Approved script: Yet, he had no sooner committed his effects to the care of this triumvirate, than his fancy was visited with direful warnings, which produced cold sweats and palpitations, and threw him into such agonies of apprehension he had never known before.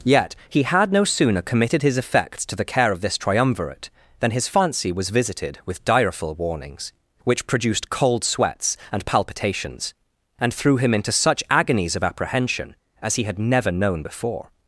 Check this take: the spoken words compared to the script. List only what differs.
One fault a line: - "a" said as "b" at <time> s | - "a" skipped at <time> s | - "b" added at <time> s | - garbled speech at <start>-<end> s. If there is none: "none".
- "as" added at 13.0 s